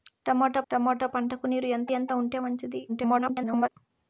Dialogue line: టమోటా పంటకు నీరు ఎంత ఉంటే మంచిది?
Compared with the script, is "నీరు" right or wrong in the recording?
right